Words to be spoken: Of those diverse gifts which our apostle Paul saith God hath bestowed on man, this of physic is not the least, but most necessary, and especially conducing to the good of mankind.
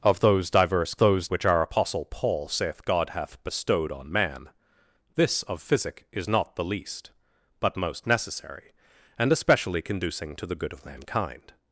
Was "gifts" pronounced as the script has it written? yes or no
no